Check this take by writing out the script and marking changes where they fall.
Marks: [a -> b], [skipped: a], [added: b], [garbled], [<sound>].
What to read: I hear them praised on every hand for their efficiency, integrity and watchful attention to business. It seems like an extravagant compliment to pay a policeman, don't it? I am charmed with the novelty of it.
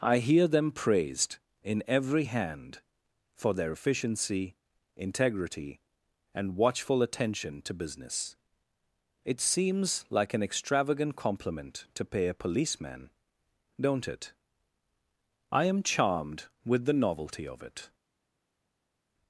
I hear them praised [on -> in] every hand for their efficiency, integrity and watchful attention to business. It seems like an extravagant compliment to pay a policeman, don't it? I am charmed with the novelty of it.